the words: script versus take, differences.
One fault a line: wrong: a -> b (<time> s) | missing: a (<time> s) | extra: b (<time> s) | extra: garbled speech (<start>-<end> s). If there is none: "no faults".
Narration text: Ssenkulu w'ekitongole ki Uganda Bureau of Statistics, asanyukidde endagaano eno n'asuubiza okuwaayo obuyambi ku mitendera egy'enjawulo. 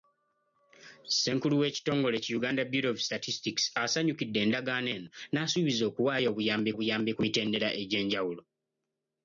extra: obuyambi (6.7 s)